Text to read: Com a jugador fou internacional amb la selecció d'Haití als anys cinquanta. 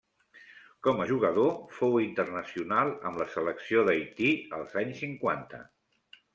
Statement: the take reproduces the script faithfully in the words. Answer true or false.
true